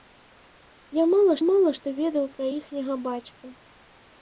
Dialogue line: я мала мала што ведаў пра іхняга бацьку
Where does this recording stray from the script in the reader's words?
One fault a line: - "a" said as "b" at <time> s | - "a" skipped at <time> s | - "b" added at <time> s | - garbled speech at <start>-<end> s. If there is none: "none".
none